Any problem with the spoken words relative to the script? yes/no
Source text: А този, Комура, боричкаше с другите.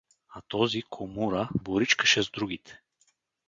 no